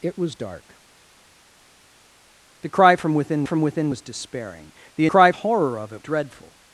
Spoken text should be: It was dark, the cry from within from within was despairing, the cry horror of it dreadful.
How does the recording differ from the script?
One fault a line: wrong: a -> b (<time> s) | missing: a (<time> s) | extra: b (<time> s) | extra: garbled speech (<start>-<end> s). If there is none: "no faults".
no faults